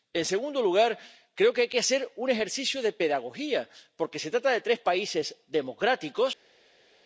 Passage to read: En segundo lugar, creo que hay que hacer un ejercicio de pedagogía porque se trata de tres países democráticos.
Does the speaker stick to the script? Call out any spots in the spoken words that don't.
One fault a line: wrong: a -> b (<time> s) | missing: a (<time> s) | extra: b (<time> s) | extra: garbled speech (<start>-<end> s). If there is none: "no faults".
no faults